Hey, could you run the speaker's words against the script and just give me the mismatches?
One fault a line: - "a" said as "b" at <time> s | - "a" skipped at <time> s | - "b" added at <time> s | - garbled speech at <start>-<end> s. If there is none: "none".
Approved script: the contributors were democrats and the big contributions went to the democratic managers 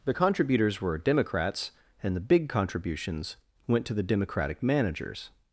none